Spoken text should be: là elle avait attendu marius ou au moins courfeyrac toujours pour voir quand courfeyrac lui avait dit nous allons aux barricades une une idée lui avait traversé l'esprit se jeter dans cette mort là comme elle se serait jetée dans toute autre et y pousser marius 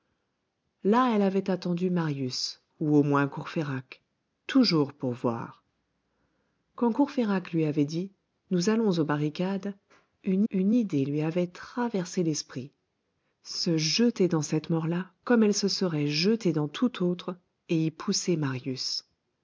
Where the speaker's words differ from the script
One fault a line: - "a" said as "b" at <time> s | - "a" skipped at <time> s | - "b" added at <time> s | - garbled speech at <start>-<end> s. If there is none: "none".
none